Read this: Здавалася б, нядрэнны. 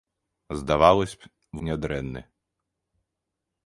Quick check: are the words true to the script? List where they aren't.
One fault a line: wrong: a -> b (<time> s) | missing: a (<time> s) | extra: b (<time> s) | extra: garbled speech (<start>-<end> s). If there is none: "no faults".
no faults